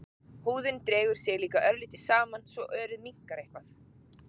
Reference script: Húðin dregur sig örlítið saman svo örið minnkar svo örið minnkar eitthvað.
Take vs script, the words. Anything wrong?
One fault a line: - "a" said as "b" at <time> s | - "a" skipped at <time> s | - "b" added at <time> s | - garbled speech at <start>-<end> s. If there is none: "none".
- "líka" added at 1.4 s
- "svo örið minnkar" skipped at 3.5 s